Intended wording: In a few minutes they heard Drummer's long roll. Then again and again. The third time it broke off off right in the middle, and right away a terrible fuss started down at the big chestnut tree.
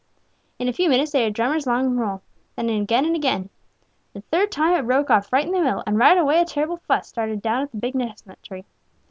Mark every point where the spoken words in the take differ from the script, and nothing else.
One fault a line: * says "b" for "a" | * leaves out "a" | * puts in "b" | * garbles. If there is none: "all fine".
* leaves out "off"